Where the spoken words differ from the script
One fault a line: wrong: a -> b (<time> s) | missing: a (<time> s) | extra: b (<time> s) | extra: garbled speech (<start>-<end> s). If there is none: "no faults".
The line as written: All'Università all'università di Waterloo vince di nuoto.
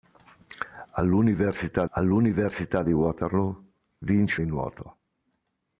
no faults